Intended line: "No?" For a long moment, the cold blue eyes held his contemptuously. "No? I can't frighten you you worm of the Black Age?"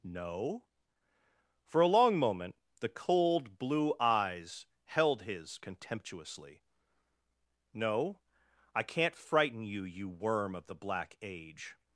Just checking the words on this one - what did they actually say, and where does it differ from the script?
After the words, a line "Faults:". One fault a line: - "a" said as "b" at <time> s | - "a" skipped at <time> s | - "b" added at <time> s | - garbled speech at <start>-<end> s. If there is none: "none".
"No?" For a long moment, the cold blue eyes held his contemptuously. "No? I can't frighten you you worm of the Black Age?"
Faults:
none